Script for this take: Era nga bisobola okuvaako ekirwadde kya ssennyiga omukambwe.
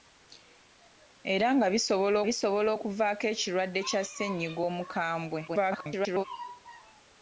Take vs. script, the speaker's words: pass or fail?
fail